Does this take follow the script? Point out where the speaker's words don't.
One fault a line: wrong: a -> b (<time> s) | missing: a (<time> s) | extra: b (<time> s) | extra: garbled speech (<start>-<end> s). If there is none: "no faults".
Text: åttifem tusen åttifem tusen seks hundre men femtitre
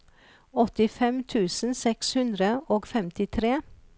missing: åttifem tusen (1.8 s)
wrong: men -> og (2.8 s)